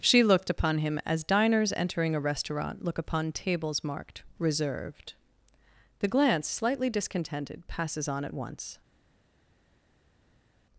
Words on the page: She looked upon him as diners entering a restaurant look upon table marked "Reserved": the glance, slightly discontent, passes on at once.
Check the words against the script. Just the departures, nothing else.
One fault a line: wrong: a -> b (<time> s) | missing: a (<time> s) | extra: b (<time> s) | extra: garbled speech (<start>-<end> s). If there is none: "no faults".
wrong: table -> tables (3.3 s)
wrong: discontent -> discontented (6.9 s)